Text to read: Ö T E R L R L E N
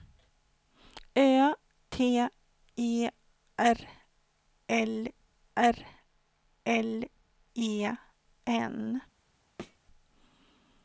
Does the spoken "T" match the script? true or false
true